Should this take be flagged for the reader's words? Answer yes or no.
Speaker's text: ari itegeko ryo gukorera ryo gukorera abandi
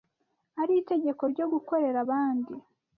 yes